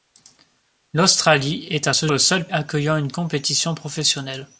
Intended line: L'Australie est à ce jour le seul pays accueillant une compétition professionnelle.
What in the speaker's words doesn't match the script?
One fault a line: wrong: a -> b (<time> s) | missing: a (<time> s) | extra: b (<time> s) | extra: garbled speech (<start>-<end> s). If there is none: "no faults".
missing: jour (2.1 s)
missing: pays (2.5 s)